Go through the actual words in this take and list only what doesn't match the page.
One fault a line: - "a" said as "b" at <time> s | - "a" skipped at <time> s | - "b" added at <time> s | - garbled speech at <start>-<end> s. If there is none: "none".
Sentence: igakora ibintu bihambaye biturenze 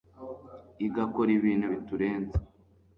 - "bihambaye" skipped at 1.7 s